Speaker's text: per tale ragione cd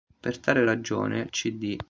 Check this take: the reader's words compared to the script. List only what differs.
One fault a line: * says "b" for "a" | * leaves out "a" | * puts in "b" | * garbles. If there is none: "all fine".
all fine